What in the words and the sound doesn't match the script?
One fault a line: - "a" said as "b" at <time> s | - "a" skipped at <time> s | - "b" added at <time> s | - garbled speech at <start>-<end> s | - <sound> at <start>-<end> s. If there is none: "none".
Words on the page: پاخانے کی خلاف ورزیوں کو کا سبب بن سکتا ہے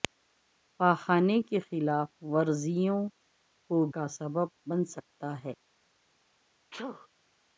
- sneeze at 6.7-7.1 s